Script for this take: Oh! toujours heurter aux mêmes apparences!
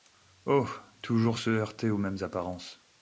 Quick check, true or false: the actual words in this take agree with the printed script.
false